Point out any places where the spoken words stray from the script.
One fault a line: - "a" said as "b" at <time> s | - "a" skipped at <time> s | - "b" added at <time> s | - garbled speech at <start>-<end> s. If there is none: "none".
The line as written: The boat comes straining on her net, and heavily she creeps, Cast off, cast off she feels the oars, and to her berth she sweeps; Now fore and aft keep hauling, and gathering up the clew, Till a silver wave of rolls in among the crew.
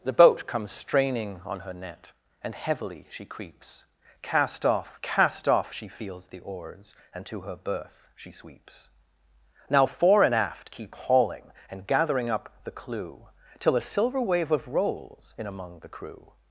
none